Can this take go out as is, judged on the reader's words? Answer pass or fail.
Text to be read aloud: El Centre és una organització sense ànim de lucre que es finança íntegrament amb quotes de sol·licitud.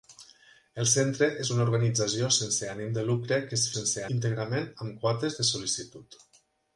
fail